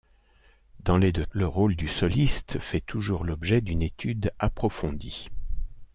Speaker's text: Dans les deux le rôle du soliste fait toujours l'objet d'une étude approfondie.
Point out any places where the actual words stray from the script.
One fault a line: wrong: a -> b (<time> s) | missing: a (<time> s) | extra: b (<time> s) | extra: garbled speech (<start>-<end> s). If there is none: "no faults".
no faults